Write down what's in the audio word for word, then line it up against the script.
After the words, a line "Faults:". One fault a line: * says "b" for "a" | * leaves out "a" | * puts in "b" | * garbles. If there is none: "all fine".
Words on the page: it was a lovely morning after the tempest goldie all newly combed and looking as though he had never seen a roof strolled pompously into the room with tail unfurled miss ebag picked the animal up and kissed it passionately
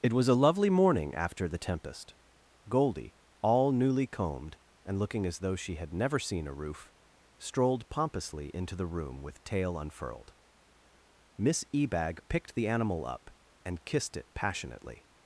it was a lovely morning after the tempest goldie all newly combed and looking as though she had never seen a roof strolled pompously into the room with tail unfurled miss ebag picked the animal up and kissed it passionately
Faults:
* says "she" for "he"